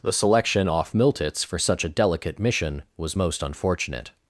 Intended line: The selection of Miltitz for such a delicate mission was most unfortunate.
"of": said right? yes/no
no